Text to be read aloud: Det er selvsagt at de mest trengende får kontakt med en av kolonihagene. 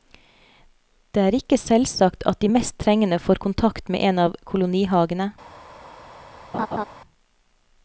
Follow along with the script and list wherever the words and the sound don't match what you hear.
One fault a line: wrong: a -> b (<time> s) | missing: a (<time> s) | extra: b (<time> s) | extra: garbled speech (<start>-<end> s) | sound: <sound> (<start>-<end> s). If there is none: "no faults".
extra: ikke (1.4 s)
sound: laugh (6.5-6.8 s)